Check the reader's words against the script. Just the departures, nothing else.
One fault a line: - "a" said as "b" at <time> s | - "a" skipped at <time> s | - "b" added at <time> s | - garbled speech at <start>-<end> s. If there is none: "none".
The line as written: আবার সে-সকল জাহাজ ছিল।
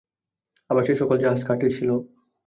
- "কাঠের" added at 1.4 s